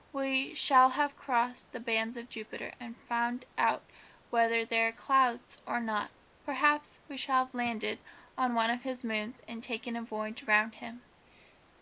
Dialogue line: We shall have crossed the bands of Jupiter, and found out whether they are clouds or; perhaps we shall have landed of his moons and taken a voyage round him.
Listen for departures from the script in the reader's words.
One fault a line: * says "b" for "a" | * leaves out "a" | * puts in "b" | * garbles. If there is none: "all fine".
* puts in "not"
* puts in "on one"